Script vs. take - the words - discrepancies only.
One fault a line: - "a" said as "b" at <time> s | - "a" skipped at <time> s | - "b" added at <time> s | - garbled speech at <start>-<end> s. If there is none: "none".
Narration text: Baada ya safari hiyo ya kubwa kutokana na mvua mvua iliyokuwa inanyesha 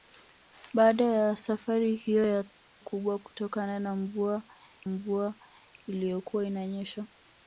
none